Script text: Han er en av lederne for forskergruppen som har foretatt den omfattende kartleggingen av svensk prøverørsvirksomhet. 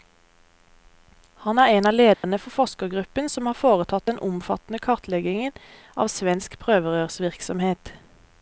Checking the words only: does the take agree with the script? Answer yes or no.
yes